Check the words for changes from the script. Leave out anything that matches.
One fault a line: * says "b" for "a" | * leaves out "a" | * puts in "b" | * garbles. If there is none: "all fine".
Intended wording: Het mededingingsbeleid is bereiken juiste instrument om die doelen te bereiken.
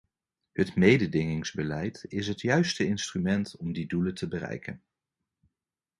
* says "het" for "bereiken"